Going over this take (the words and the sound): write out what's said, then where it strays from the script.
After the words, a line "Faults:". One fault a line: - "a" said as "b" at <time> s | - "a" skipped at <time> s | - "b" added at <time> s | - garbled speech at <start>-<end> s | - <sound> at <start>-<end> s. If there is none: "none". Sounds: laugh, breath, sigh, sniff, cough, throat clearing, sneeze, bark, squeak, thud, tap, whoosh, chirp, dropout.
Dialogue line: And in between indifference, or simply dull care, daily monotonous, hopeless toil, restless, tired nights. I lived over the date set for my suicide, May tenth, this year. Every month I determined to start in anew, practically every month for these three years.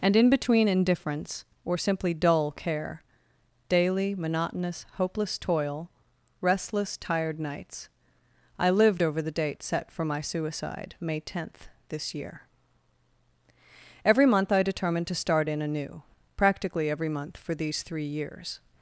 And in between indifference, or simply dull care, daily monotonous, hopeless toil, restless, tired nights. I lived over the date set for my suicide, May tenth, this year. Every month I determined to start in anew, practically every month for these three years.
Faults:
none